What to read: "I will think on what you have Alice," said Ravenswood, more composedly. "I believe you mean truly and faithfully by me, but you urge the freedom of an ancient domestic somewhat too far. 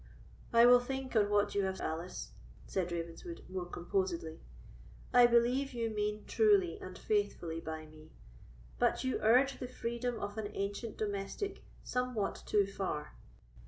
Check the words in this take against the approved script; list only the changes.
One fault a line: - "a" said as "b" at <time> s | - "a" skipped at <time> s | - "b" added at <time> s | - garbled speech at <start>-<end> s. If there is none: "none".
none